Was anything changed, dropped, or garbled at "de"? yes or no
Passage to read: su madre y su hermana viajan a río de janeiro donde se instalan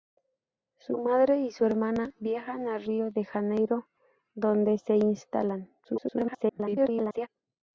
no